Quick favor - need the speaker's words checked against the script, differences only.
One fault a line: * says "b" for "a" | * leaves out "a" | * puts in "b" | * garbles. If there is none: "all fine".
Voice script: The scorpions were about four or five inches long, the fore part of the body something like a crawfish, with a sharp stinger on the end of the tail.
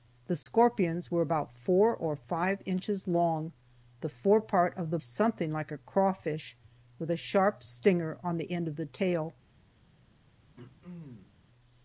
* leaves out "body"